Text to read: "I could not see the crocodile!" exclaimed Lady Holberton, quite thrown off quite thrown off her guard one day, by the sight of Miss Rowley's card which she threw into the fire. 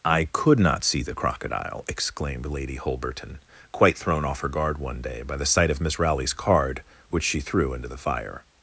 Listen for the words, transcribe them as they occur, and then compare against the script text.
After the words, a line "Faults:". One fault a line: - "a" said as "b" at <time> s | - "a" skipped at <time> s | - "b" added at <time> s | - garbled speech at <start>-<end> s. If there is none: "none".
"I could not see the crocodile!" exclaimed Lady Holberton, quite thrown off her guard one day, by the sight of Miss Rowley's card which she threw into the fire.
Faults:
- "quite thrown off" skipped at 4.4 s